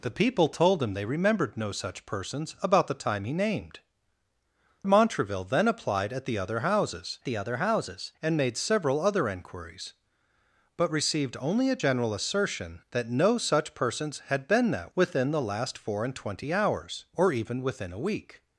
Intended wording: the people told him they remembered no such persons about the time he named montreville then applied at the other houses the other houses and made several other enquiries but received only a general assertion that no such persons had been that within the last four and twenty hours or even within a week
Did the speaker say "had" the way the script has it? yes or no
yes